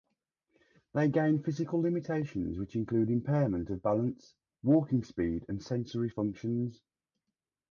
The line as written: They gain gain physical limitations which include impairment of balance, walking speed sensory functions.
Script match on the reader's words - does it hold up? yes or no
no